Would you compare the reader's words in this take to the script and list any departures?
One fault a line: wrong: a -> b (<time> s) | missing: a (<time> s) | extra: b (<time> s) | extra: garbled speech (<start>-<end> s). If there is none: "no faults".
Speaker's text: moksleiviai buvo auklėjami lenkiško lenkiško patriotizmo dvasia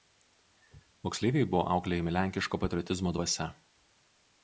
missing: lenkiško (2.6 s)